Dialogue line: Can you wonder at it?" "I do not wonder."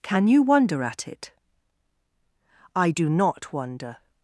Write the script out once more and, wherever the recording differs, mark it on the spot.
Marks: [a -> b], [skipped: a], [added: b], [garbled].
Can you wonder at it?" "I do not wonder."